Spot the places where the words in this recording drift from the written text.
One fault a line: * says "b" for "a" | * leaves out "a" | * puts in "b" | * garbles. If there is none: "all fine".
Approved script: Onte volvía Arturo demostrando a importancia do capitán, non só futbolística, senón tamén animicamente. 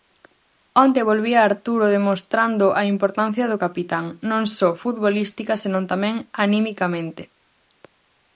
all fine